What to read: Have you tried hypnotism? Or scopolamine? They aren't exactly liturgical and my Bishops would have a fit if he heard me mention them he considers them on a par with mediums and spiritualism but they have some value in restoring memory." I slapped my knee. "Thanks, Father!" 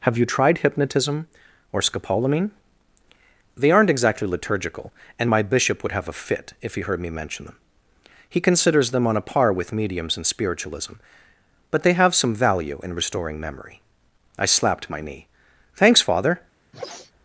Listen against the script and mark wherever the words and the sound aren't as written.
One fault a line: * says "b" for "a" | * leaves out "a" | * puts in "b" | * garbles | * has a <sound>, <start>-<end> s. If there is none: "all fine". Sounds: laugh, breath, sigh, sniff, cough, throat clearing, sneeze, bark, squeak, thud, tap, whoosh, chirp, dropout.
* says "Bishop" for "Bishops"
* has a sneeze, 16.7-17.1 s